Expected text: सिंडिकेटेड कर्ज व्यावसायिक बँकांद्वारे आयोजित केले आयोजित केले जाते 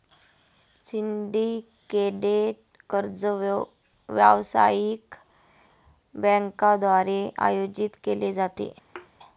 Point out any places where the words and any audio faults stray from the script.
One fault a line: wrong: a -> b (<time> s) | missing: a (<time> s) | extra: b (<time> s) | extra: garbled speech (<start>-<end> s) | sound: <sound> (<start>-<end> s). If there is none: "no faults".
missing: आयोजित केले (8.3 s)
sound: thud (8.9-9.1 s)